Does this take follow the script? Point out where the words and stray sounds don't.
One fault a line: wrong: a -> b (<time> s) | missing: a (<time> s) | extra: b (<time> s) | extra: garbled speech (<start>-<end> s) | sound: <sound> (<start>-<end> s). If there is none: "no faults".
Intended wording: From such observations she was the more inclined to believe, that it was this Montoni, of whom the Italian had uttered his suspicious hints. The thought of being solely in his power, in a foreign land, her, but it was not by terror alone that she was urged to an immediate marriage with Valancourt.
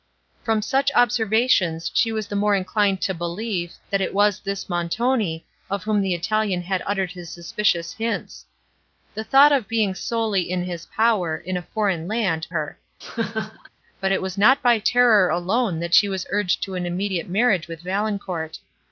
sound: laugh (13.0-13.7 s)